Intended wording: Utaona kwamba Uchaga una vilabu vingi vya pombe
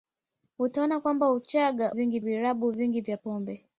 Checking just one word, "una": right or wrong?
wrong